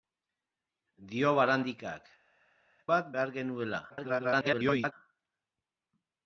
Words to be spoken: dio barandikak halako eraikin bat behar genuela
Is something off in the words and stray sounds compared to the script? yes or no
yes